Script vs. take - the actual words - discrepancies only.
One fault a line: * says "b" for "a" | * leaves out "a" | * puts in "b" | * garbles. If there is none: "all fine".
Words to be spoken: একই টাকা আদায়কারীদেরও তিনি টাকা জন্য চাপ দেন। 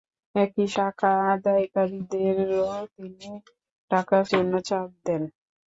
all fine